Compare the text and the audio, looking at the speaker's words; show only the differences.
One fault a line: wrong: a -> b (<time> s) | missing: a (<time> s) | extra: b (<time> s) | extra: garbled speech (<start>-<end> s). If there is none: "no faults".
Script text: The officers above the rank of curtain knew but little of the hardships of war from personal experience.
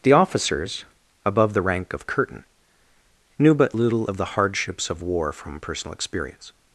no faults